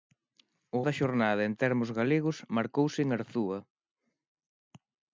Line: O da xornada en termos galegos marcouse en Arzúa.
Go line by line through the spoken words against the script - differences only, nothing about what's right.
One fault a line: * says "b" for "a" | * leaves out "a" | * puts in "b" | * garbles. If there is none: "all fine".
all fine